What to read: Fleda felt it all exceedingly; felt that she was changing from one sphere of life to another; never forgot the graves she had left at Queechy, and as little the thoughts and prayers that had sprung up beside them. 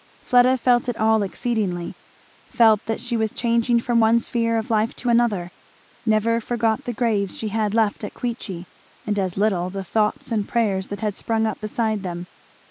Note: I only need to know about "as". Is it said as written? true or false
true